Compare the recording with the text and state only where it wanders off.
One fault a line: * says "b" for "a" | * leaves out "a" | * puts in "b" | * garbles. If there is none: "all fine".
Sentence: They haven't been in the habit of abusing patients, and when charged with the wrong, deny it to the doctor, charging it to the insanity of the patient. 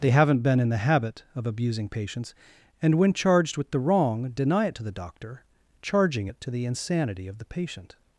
all fine